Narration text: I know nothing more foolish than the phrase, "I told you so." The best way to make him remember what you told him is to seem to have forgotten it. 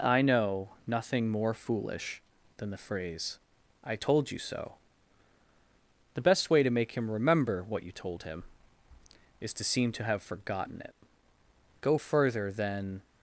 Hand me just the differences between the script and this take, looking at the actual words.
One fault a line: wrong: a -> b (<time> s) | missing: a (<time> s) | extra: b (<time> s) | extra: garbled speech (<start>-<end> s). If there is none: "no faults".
extra: Go further than (11.8 s)